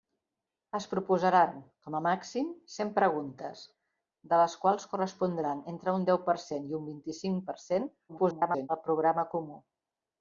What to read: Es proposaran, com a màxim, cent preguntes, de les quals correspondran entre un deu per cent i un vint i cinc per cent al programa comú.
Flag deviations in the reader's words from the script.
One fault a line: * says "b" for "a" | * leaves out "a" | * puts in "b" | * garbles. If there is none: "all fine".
* garbles